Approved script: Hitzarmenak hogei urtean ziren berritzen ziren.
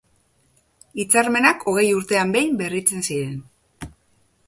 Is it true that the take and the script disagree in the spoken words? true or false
true